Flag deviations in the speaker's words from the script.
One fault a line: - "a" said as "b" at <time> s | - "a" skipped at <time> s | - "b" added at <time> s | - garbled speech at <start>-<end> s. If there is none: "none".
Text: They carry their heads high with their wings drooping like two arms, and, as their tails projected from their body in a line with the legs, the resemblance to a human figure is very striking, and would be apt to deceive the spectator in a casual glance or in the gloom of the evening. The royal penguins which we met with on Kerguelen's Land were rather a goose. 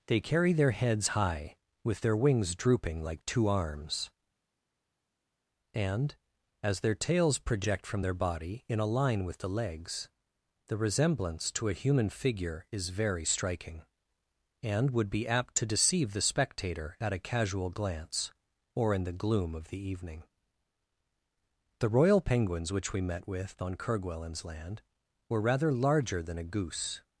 - "projected" said as "project" at 7.4 s
- "in" said as "at" at 17.0 s
- "larger than" added at 25.7 s